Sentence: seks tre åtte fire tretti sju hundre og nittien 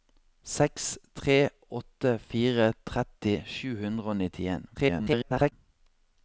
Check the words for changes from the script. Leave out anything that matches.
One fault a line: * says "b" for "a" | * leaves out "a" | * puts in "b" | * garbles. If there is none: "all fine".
* garbles